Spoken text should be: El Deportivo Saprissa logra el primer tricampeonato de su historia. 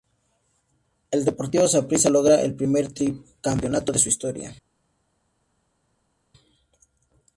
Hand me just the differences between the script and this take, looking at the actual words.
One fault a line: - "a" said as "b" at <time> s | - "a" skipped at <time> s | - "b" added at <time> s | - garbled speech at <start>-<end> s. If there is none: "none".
none